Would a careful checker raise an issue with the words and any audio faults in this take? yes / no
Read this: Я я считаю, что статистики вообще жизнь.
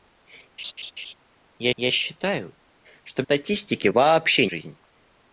yes